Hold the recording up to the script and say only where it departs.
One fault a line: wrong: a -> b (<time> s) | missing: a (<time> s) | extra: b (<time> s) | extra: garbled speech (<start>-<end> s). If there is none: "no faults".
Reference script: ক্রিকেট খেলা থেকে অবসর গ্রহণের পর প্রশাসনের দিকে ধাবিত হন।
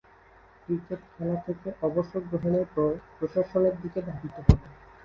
no faults